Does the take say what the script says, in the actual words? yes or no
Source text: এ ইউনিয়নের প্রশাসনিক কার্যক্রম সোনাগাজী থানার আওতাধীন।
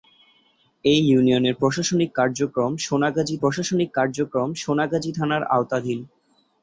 no